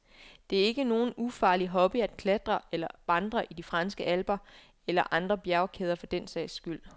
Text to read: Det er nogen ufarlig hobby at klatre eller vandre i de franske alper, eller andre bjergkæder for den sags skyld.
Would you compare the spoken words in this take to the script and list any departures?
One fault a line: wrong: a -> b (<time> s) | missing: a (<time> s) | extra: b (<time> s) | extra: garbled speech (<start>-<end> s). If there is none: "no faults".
extra: ikke (0.7 s)